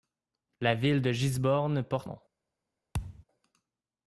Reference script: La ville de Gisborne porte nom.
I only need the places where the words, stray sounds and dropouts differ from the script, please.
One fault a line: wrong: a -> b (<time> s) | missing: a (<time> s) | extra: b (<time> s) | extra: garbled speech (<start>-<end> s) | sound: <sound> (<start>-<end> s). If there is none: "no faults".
sound: thud (2.9-3.2 s)